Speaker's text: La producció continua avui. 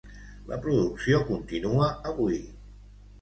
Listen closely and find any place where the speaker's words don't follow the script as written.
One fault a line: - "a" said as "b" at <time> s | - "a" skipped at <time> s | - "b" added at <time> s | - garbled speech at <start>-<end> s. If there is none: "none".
none